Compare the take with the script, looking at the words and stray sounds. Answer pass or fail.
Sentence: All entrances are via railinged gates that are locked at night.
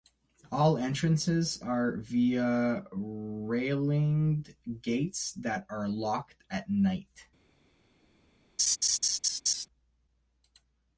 fail